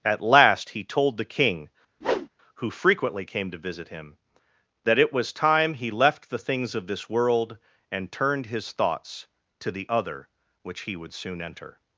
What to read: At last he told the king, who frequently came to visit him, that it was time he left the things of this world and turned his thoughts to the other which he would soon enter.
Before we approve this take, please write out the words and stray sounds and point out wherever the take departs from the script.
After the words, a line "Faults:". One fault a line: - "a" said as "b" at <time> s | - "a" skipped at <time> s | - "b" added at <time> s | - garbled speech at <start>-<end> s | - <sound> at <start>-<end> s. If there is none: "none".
At last he told the king, who frequently came to visit him, that it was time he left the things of this world and turned his thoughts to the other which he would soon enter.
Faults:
- whoosh at 2.0-2.3 s